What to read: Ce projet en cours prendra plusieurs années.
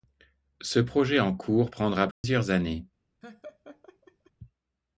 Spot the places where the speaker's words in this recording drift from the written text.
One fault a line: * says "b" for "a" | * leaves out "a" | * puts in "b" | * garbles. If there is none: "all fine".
all fine